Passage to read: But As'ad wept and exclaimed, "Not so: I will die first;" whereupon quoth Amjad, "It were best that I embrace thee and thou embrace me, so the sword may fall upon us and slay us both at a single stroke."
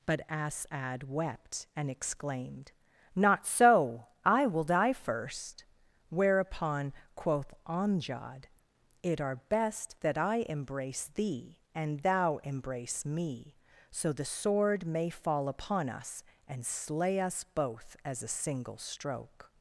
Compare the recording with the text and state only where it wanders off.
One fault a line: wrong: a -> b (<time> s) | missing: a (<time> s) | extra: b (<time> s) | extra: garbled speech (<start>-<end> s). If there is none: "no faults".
wrong: were -> are (9.2 s)
wrong: at -> as (18.0 s)